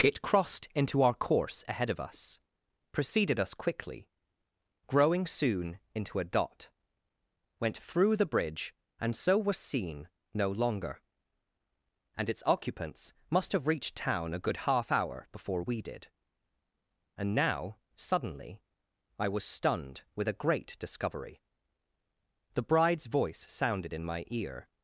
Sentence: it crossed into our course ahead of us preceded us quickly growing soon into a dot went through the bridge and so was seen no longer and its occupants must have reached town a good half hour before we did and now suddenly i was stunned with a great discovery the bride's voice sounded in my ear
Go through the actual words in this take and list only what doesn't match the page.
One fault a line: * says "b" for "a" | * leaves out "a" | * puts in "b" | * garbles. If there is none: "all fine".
all fine